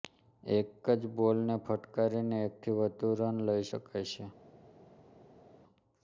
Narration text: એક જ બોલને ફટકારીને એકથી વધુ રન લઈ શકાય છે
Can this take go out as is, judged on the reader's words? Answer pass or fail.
pass